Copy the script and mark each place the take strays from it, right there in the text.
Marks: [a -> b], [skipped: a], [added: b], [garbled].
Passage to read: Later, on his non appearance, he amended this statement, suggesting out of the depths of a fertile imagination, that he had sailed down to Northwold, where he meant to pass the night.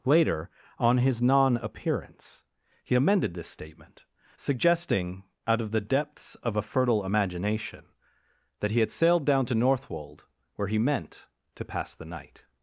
Later, on his non appearance, he amended this statement, suggesting out of the depths of a fertile imagination, that he had sailed down to Northwold, where he meant to pass the night.